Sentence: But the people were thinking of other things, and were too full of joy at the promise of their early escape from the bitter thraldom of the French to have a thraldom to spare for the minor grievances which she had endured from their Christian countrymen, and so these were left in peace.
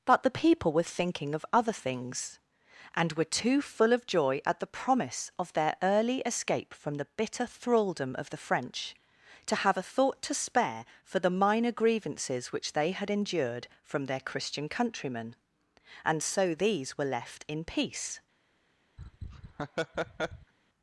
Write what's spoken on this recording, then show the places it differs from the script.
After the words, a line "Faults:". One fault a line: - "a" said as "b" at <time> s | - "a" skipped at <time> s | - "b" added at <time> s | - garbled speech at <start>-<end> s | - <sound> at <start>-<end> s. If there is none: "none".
But the people were thinking of other things, and were too full of joy at the promise of their early escape from the bitter thraldom of the French to have a thought to spare for the minor grievances which they had endured from their Christian countrymen, and so these were left in peace.
Faults:
- "thraldom" said as "thought" at 9.8 s
- "she" said as "they" at 12.7 s
- laugh at 19.0-20.5 s